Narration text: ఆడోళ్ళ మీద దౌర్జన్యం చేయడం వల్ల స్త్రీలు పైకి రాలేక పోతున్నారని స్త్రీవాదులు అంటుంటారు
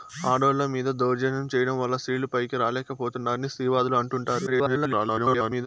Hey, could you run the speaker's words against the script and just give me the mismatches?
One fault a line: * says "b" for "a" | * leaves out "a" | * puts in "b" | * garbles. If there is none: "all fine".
* garbles